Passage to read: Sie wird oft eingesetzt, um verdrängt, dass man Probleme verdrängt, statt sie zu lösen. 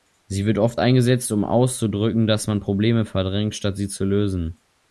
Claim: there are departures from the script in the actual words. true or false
true